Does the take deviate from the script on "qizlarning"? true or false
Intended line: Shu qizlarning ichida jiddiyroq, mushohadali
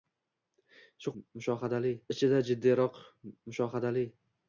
true